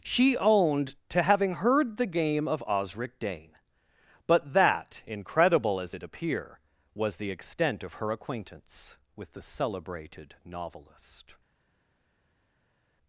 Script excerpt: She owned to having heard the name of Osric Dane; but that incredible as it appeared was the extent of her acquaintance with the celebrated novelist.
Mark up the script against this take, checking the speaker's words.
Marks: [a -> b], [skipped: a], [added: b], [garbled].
She owned to having heard the [name -> game] of Osric Dane; but that incredible as it [appeared -> appear] was the extent of her acquaintance with the celebrated novelist.